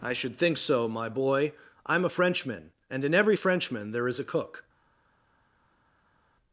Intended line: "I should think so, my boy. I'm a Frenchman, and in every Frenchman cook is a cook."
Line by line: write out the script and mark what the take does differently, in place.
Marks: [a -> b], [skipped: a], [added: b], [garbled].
"I should think so, my boy. I'm a Frenchman, and in every Frenchman [cook -> there] is a cook."